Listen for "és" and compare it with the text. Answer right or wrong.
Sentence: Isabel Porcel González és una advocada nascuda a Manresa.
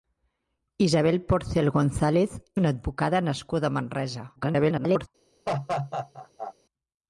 wrong